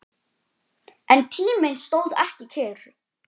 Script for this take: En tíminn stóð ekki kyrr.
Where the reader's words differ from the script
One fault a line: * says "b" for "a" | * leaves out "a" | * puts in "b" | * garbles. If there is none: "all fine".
all fine